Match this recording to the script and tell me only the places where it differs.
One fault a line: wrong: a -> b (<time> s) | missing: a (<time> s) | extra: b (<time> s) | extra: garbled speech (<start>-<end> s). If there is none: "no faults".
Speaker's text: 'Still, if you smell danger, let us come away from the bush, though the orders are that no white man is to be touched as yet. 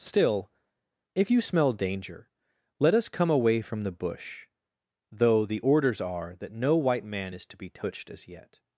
no faults